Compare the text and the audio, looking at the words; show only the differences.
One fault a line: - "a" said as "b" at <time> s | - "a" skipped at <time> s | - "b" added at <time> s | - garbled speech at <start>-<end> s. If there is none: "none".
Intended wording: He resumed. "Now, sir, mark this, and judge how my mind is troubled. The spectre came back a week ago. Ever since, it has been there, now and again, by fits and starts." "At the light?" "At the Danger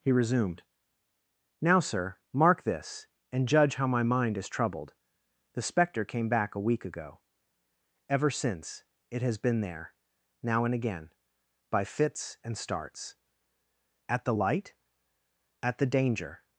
none